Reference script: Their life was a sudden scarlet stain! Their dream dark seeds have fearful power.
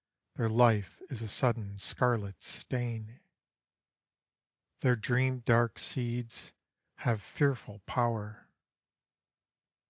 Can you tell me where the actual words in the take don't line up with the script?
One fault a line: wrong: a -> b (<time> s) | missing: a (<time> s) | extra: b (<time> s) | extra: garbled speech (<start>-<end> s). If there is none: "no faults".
wrong: was -> is (1.1 s)